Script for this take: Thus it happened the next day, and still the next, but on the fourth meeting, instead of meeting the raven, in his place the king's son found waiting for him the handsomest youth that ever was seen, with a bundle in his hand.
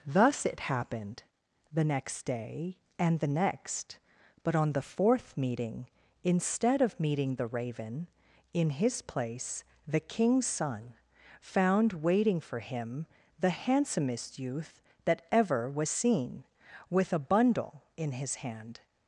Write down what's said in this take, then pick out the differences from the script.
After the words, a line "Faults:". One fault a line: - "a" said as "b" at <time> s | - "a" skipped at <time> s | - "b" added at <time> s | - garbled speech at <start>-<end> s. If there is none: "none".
Thus it happened the next day, and the next, but on the fourth meeting, instead of meeting the raven, in his place the king's son found waiting for him the handsomest youth that ever was seen, with a bundle in his hand.
Faults:
- "still" skipped at 3.2 s